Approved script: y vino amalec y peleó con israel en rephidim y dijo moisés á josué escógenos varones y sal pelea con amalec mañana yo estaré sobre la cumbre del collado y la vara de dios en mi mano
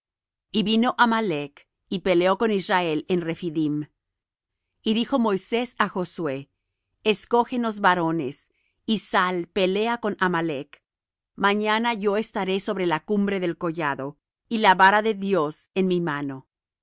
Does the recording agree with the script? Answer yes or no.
yes